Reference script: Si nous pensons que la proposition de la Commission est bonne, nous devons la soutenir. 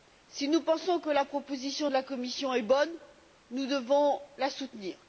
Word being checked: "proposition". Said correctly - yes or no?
yes